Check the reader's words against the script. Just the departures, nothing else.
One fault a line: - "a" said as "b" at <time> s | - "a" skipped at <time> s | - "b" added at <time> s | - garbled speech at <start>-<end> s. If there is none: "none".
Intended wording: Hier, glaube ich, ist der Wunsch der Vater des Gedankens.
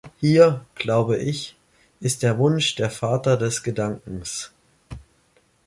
none